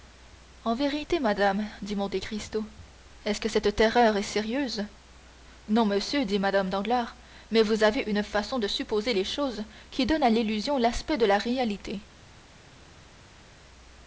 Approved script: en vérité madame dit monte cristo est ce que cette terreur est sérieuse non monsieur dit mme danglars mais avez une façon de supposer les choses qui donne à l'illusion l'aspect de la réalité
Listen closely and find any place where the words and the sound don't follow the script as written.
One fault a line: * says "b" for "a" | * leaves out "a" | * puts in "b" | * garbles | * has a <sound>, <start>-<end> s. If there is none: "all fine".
* puts in "vous"